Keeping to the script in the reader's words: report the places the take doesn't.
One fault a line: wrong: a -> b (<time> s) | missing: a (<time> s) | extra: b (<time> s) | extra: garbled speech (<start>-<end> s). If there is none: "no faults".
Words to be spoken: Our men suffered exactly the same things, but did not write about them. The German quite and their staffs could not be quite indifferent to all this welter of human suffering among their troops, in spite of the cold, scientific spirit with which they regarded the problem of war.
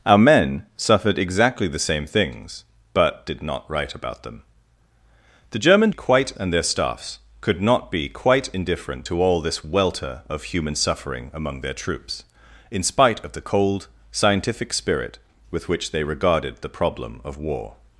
no faults